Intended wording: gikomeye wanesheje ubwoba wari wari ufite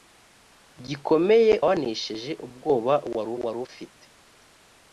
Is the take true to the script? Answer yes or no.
yes